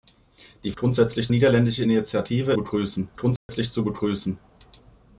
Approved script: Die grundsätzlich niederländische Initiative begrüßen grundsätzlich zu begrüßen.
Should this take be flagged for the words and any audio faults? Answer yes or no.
yes